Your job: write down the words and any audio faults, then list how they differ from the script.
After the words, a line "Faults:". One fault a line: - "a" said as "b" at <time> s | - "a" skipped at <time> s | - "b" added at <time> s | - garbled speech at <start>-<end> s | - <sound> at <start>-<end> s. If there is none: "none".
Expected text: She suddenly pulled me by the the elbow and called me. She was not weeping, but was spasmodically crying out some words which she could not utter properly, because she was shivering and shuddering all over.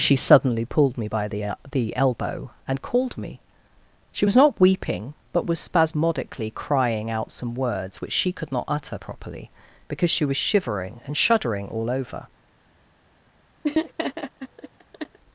She suddenly pulled me by the the elbow and called me. She was not weeping, but was spasmodically crying out some words which she could not utter properly, because she was shivering and shuddering all over.
Faults:
- laugh at 13.6-15.2 s